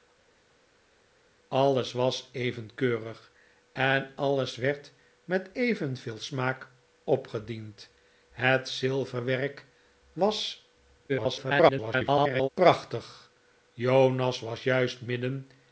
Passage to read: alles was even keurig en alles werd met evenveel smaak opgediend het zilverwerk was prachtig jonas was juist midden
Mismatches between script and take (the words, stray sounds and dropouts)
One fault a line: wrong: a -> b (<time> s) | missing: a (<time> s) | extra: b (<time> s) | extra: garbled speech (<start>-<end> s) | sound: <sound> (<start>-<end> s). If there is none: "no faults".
extra: garbled speech (11.1-12.5 s)